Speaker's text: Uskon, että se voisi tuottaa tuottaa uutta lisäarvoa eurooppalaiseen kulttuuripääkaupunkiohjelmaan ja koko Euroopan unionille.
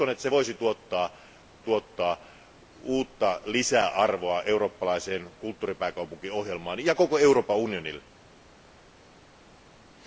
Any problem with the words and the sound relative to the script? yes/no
no